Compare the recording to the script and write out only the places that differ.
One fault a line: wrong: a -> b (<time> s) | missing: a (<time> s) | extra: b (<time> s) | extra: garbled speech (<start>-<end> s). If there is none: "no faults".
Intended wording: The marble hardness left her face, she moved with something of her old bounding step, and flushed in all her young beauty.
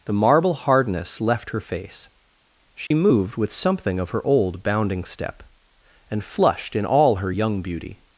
no faults